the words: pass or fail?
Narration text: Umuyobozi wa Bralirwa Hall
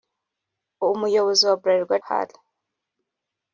pass